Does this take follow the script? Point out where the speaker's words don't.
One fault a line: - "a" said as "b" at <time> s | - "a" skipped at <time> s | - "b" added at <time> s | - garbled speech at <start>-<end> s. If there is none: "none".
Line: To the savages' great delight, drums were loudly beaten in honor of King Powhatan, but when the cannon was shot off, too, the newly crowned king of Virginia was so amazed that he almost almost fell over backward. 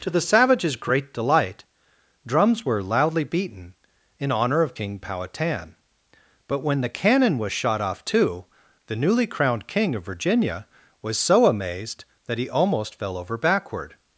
- "almost" skipped at 12.9 s